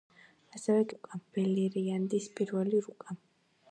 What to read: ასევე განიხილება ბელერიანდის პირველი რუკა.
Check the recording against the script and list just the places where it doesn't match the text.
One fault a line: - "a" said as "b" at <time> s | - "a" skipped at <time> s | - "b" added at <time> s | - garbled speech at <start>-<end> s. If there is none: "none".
- "განიხილება" said as "რუკა" at 0.9 s